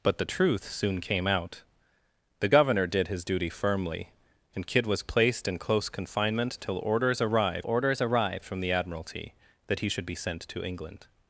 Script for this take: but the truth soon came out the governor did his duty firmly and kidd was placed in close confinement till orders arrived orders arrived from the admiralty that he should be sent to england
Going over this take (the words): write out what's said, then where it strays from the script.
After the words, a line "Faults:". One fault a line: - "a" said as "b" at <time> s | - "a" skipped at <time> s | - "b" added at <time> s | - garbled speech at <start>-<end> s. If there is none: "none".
but the truth soon came out the governor did his duty firmly and kidd was placed in close confinement till orders arrived orders arrived from the admiralty that he should be sent to england
Faults:
none